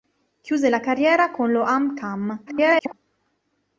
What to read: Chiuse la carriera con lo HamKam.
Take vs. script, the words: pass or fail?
fail